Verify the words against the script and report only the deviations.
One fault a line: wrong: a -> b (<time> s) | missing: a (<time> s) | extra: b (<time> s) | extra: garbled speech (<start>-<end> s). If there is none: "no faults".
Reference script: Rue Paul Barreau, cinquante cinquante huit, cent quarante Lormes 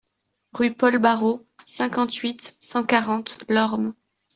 missing: cinquante (2.1 s)